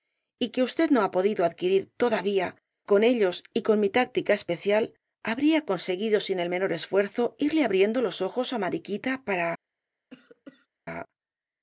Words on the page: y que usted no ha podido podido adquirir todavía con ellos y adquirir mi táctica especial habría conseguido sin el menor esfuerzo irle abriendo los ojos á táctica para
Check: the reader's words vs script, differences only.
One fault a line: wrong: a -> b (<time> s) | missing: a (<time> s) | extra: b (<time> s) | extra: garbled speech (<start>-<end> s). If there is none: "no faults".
missing: podido (1.4 s)
wrong: adquirir -> con (3.6 s)
wrong: táctica -> mariquita (8.6 s)